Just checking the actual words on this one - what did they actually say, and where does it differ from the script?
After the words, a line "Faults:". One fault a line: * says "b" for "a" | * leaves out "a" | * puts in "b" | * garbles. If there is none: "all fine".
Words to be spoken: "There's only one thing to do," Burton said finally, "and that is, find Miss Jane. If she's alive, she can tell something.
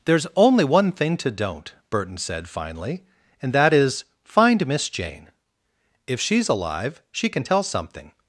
"There's only one thing to don't," Burton said finally, "and that is, find Miss Jane. If she's alive, she can tell something.
Faults:
* says "don't" for "do"